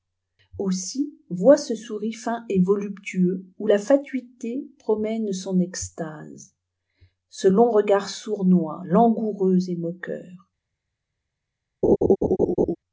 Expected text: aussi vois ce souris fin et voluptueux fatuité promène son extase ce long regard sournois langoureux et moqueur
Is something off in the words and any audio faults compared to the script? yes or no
yes